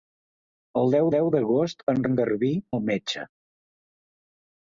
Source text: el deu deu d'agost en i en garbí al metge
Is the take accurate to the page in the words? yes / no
yes